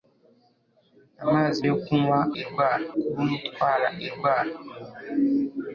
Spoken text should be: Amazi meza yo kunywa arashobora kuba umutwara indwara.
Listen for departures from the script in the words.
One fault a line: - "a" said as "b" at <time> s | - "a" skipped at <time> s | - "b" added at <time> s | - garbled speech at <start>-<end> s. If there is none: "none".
- "meza" skipped at 1.6 s
- "arashobora" said as "indwara" at 2.4 s